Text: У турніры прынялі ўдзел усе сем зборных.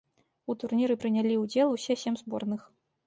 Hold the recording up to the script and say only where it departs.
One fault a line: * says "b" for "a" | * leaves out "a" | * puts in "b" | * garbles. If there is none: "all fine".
all fine